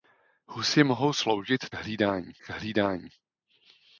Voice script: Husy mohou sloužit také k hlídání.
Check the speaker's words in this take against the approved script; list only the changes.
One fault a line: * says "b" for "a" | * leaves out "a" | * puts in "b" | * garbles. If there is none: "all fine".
* says "hlídání" for "také"